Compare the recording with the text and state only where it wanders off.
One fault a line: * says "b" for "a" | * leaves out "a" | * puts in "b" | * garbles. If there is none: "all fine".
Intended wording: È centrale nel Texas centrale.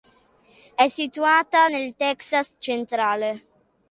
* says "situata" for "centrale"